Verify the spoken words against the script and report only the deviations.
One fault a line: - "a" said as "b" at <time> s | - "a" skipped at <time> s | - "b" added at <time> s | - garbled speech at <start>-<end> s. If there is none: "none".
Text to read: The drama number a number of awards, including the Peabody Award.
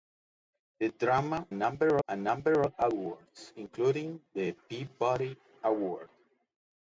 none